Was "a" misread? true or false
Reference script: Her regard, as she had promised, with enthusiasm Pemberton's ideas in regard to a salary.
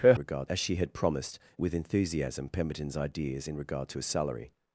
false